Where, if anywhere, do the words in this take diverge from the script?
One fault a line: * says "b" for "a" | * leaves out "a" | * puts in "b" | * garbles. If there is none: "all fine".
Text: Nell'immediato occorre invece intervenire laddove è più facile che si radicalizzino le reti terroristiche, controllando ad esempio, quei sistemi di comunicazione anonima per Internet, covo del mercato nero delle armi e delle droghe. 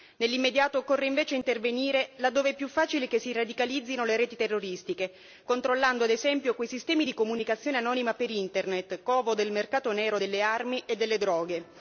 all fine